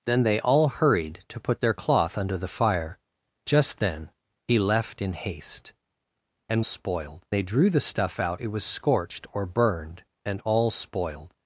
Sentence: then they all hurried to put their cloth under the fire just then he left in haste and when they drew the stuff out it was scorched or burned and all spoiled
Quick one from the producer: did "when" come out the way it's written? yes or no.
no